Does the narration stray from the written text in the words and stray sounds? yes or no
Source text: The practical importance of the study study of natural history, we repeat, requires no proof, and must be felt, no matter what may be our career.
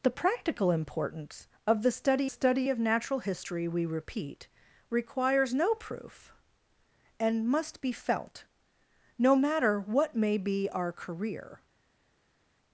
no